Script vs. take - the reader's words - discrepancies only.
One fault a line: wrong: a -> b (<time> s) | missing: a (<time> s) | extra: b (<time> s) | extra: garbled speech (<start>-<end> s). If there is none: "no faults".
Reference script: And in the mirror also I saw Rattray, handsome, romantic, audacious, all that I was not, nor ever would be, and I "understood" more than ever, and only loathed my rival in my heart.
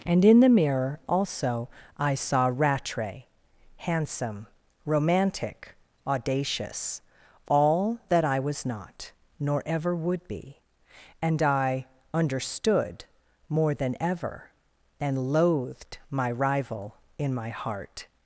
missing: only (15.3 s)